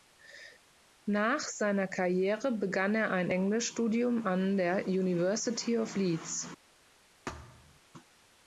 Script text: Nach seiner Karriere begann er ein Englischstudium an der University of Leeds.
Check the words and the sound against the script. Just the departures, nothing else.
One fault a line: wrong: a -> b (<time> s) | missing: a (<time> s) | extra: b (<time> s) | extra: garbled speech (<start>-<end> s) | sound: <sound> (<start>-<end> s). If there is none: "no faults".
sound: thud (7.3-7.8 s)